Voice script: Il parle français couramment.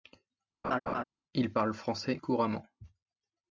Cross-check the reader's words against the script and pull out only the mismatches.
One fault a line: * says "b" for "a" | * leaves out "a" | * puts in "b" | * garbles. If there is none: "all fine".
all fine